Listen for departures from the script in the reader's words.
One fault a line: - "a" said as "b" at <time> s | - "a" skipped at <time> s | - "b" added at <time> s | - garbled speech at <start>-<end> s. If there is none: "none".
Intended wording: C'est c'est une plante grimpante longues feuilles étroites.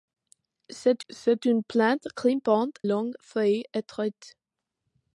none